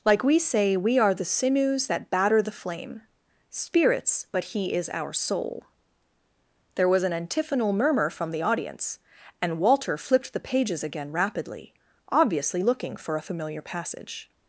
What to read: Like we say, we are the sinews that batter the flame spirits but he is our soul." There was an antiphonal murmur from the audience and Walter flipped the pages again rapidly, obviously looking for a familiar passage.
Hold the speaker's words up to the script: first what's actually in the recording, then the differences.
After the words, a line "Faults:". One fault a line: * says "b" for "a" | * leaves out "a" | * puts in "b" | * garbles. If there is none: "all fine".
Like we say, we are the sinews that batter the flame spirits but he is our soul." There was an antiphonal murmur from the audience and Walter flipped the pages again rapidly, obviously looking for a familiar passage.
Faults:
all fine